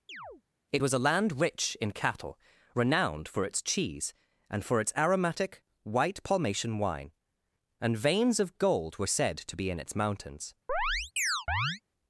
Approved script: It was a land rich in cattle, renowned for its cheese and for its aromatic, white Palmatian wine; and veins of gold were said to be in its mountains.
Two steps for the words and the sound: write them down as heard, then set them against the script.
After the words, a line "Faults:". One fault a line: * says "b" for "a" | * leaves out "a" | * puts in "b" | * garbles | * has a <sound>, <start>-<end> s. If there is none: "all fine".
It was a land rich in cattle, renowned for its cheese and for its aromatic, white Palmatian wine; and veins of gold were said to be in its mountains.
Faults:
* has a chirp, 0.1-0.4 s
* has a chirp, 10.7-11.8 s